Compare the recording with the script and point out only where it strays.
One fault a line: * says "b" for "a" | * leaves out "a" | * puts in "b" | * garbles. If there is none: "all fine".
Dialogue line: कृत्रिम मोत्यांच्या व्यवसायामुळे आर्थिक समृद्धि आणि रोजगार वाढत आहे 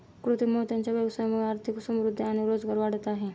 all fine